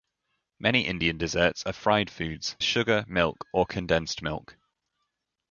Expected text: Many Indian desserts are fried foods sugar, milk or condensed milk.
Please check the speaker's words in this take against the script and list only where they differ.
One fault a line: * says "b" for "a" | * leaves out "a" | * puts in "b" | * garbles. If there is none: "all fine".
all fine